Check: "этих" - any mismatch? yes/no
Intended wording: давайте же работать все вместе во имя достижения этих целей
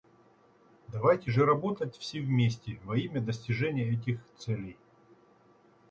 no